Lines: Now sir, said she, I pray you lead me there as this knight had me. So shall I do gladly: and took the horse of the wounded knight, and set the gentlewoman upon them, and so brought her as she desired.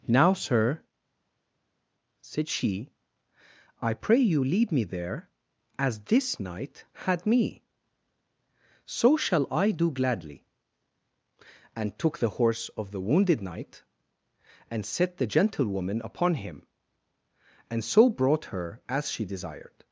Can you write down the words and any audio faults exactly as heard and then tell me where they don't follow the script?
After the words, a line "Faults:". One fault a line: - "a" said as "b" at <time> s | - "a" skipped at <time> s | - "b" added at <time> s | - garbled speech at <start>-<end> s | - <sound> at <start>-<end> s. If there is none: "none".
Now sir, said she, I pray you lead me there as this knight had me. So shall I do gladly: and took the horse of the wounded knight, and set the gentlewoman upon him, and so brought her as she desired.
Faults:
- "them" said as "him" at 16.3 s